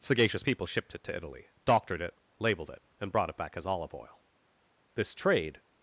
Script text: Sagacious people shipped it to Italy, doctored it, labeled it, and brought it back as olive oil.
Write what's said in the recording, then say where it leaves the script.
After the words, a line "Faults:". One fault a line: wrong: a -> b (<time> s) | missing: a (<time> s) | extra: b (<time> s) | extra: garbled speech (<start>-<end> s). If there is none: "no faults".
Sagacious people shipped it to Italy, doctored it, labeled it, and brought it back as olive oil. This trade
Faults:
extra: This trade (4.9 s)